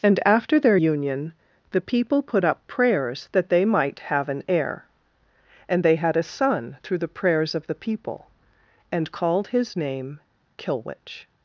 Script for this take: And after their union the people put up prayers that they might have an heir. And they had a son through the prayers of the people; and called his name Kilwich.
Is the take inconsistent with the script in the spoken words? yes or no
no